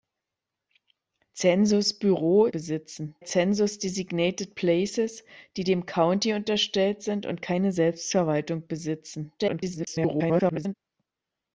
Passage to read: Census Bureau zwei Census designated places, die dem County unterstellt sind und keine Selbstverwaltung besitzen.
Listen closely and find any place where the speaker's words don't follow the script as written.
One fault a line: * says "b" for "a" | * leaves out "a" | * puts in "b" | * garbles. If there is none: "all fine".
* says "besitzen" for "zwei"
* garbles